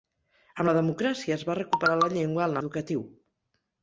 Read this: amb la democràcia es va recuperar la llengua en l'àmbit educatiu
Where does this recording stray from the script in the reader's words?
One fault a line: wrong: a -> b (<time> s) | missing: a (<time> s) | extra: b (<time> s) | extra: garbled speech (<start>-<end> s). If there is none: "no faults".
missing: l'àmbit (2.6 s)